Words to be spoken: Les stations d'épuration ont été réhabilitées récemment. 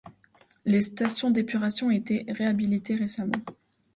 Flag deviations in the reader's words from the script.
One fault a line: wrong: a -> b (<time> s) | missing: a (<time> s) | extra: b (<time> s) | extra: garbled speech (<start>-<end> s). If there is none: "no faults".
no faults